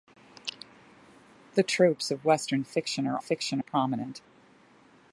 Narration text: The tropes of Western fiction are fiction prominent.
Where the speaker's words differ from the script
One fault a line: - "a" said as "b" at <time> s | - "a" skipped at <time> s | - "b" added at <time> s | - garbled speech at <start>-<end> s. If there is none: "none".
none